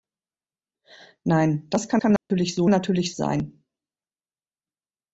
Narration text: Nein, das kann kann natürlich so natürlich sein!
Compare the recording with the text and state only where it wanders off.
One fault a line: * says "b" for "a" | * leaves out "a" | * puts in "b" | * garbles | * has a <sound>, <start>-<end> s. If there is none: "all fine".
* has a dropout, 2.2-2.3 s